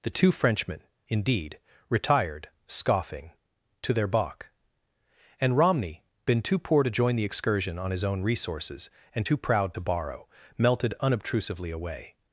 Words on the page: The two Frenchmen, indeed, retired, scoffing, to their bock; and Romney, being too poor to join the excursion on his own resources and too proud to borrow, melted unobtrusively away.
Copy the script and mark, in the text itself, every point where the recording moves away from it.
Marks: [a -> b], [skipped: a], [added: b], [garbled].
The two Frenchmen, indeed, retired, scoffing, to their bock; and Romney, [being -> been] too poor to join the excursion on his own resources and too proud to borrow, melted unobtrusively away.